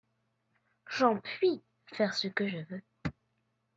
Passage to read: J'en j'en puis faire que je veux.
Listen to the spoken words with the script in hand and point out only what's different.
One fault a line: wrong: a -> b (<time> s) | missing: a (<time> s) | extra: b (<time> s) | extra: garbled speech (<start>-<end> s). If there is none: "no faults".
missing: j'en (1.2 s)
extra: ce (2.1 s)